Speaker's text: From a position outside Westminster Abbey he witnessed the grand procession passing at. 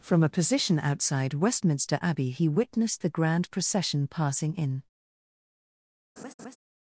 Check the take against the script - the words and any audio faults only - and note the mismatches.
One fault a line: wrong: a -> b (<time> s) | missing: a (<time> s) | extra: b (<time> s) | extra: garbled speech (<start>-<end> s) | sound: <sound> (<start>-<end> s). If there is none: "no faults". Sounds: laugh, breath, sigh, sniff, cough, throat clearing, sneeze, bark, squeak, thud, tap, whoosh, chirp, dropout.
wrong: at -> in (4.5 s)
sound: laugh (6.2-6.6 s)